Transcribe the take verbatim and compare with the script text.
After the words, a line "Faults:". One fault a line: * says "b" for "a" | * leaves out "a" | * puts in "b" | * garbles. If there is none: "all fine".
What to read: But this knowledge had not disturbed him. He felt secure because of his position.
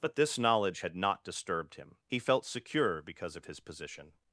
But this knowledge had not disturbed him. He felt secure because of his position.
Faults:
all fine